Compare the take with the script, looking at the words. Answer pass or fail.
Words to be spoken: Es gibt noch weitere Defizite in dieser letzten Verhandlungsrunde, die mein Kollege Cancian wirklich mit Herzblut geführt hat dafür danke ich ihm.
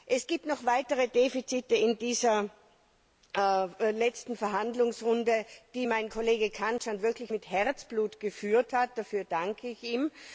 pass